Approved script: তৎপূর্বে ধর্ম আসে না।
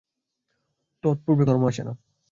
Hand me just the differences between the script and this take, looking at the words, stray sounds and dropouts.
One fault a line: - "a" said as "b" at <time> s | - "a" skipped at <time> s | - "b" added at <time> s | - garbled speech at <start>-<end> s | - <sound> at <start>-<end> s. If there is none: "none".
none